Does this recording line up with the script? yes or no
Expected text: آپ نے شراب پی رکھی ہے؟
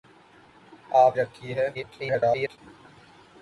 no